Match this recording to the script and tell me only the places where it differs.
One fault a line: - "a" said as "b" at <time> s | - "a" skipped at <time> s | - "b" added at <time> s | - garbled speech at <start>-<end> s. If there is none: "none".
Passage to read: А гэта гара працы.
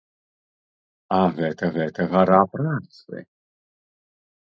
- "гэта" added at 1.8 s